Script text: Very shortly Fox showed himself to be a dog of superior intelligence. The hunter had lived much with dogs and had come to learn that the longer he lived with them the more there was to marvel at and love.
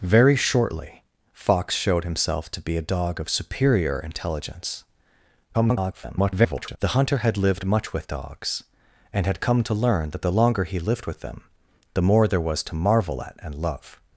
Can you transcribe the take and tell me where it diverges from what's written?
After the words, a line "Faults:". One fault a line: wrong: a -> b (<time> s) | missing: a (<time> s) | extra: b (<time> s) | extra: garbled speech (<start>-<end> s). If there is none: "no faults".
Very shortly Fox showed himself to be a dog of superior intelligence. [garbled] The hunter had lived much with dogs and had come to learn that the longer he lived with them the more there was to marvel at and love.
Faults:
extra: garbled speech (5.5-6.8 s)